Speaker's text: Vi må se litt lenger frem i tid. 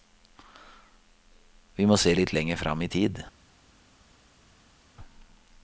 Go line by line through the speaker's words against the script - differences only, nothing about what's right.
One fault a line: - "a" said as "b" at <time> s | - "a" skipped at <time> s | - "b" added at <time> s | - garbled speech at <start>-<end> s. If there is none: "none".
none